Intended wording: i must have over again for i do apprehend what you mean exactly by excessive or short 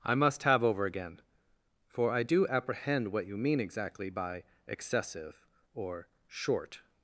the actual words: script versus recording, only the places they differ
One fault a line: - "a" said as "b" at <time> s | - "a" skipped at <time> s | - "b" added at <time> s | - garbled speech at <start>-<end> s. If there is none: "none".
none